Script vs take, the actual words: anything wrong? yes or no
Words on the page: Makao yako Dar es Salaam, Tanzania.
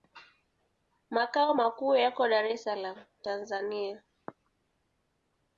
yes